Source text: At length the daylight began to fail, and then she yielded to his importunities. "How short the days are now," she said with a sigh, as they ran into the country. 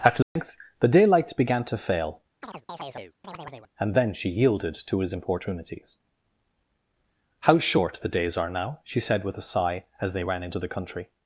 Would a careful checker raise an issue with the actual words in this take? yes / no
no